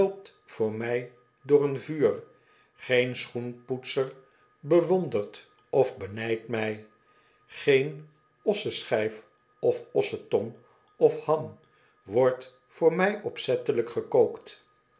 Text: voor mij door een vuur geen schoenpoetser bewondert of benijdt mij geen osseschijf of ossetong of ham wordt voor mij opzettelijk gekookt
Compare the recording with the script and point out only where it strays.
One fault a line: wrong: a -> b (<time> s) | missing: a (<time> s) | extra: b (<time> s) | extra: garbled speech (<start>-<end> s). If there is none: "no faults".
no faults